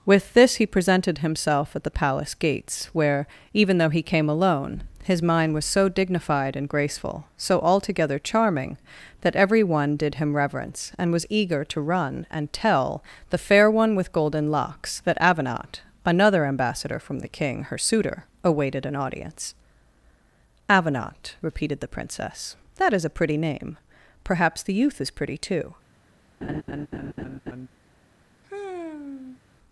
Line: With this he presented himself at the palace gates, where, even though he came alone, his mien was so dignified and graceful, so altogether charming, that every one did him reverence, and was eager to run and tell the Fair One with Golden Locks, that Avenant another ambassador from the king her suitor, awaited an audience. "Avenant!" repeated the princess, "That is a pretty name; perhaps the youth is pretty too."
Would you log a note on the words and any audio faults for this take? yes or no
yes